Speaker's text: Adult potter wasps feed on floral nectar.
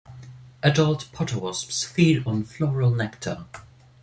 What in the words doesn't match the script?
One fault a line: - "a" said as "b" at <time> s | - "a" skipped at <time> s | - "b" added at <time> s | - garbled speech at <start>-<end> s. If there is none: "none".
none